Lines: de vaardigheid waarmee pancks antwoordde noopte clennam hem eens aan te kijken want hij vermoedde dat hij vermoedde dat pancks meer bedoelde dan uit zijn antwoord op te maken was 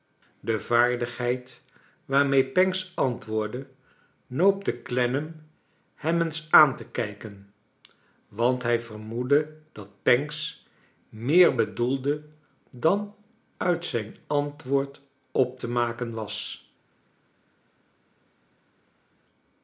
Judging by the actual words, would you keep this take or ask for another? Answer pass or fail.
fail